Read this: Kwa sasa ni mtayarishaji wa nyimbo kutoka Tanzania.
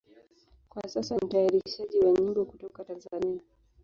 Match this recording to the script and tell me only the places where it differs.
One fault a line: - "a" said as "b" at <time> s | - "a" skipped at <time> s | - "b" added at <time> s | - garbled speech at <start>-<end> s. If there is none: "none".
- "ni" skipped at 1.2 s